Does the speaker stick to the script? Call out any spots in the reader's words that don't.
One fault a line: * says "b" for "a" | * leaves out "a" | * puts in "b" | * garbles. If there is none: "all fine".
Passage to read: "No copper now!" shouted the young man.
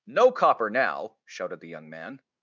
all fine